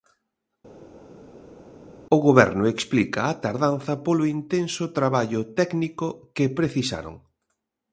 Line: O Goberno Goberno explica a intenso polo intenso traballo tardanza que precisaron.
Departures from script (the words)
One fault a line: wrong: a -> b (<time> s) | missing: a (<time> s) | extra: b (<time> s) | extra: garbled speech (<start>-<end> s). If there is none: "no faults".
missing: Goberno (2.6 s)
wrong: intenso -> tardanza (3.4 s)
wrong: tardanza -> técnico (5.6 s)